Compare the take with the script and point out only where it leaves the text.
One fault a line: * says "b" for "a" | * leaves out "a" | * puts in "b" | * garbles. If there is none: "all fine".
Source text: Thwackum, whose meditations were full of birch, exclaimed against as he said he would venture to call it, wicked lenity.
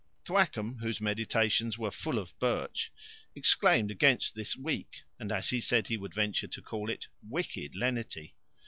* puts in "this weak and"